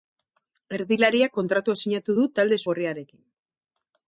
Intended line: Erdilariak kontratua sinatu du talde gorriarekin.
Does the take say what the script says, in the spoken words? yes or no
yes